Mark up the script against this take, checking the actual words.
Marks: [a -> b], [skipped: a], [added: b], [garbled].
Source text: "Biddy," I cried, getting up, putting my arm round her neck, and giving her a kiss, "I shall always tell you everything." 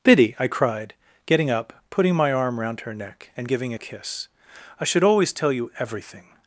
"Biddy," I cried, getting up, putting my arm round her neck, and giving [skipped: her] a kiss, "I [shall -> should] always tell you everything."